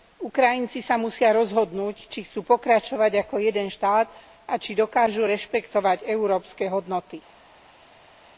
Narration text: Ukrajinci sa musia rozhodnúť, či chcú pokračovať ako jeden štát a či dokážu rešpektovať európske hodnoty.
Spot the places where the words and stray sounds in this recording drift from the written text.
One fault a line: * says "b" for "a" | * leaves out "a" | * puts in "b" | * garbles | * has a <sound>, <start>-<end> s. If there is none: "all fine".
all fine